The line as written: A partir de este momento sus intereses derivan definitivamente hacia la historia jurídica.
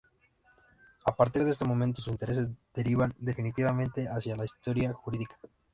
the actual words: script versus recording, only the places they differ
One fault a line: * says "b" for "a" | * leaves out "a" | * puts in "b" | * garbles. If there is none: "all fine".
all fine